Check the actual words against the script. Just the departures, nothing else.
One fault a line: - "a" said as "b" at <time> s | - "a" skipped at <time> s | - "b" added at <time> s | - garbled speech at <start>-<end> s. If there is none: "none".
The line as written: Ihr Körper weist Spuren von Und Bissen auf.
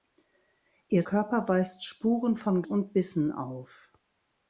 none